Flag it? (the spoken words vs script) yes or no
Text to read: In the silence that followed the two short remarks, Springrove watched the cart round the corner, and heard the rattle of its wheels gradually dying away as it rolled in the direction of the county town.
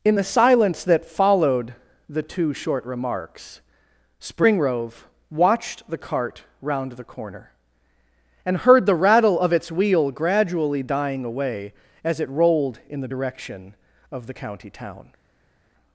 yes